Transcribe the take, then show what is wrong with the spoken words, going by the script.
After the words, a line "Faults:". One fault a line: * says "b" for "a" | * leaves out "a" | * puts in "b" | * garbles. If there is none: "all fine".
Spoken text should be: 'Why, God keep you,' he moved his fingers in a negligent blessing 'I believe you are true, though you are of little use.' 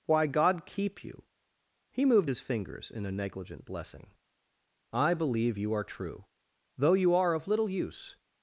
'Why, God keep you,' he moved his fingers in a negligent blessing 'I believe you are true, though you are of little use.'
Faults:
all fine